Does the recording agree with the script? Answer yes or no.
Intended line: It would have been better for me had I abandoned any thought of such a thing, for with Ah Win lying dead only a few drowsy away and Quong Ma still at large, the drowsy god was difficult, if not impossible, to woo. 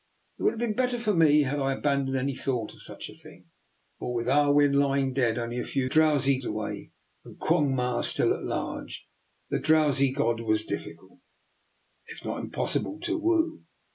yes